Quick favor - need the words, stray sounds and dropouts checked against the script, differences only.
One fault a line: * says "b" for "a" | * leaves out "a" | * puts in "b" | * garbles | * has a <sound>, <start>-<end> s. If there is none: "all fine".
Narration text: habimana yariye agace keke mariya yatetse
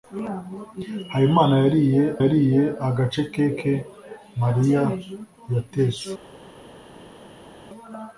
* puts in "yariye"